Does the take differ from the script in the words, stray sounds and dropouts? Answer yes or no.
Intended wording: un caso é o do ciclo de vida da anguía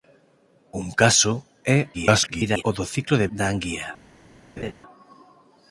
yes